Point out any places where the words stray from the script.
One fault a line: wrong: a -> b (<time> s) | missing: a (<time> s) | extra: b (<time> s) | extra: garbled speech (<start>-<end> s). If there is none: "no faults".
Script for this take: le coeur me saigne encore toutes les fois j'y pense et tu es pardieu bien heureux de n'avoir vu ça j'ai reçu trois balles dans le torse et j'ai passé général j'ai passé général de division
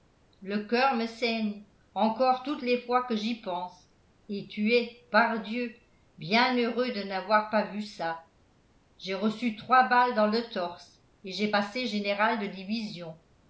extra: que (3.0 s)
extra: pas (7.5 s)
missing: j'ai passé général (12.4 s)